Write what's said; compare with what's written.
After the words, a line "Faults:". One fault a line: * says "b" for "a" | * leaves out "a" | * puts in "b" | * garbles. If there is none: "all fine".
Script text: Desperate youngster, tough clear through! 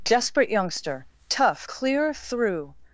Desperate youngster, tough clear through!
Faults:
all fine